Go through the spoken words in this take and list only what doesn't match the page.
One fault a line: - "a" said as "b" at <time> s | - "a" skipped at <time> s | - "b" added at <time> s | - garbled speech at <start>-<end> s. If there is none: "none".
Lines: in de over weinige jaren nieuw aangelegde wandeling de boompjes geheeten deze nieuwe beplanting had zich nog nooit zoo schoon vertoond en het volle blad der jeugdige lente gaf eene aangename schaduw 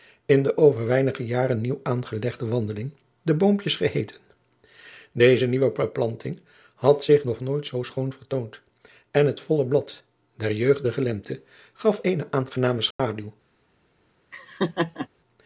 none